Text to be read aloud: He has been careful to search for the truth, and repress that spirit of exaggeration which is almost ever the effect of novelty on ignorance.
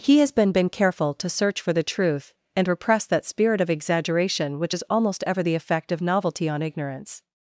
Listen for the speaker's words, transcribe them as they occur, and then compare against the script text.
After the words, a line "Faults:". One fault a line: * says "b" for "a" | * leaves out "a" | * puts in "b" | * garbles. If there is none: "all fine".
He has been been careful to search for the truth, and repress that spirit of exaggeration which is almost ever the effect of novelty on ignorance.
Faults:
* puts in "been"